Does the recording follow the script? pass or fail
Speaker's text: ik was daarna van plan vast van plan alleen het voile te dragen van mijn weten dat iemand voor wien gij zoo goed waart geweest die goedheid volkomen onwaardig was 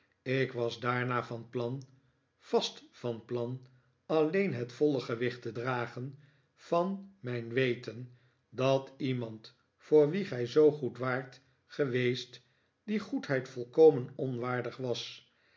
fail